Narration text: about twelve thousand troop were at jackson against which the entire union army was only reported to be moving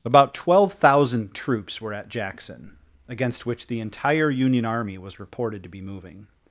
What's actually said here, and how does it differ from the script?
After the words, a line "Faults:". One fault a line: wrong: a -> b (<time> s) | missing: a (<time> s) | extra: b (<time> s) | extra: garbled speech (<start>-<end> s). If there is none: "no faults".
about twelve thousand troops were at jackson against which the entire union army was reported to be moving
Faults:
wrong: troop -> troops (1.3 s)
missing: only (5.2 s)